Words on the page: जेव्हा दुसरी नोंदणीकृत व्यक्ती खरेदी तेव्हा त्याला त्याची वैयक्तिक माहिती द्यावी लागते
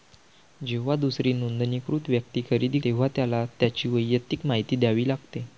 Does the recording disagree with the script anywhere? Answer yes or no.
no